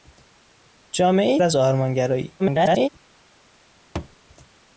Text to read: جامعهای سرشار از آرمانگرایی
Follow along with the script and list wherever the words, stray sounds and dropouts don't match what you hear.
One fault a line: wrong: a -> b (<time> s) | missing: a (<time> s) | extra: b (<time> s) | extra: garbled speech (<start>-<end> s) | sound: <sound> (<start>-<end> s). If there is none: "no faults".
missing: سرشار (1.4 s)
extra: garbled speech (2.4-2.9 s)
sound: thud (4.0-4.2 s)